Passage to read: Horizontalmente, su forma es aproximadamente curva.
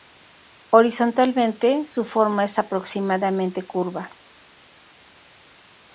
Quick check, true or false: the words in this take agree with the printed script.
true